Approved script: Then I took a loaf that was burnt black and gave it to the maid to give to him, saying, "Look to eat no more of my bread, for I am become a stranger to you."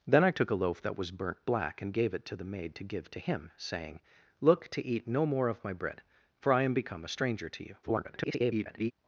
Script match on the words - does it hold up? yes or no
no